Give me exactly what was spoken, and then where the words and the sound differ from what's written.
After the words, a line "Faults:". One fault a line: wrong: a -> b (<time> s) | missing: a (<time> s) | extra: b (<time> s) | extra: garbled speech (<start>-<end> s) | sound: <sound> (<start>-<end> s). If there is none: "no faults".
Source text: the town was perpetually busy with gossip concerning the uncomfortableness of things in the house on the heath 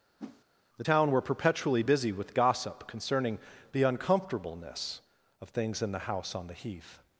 the town were perpetually busy with gossip concerning the uncomfortableness of things in the house on the heath
Faults:
sound: whoosh (0.2-0.4 s)
wrong: was -> were (1.1 s)